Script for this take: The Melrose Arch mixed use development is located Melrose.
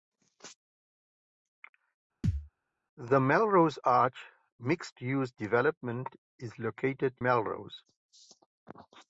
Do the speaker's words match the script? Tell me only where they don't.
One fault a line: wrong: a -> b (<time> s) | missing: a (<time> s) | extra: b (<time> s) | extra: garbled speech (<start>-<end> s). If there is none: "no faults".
no faults